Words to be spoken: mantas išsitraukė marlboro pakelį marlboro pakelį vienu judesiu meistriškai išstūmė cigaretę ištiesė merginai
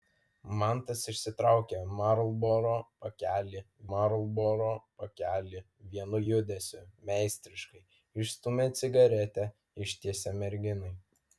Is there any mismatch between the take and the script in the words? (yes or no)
no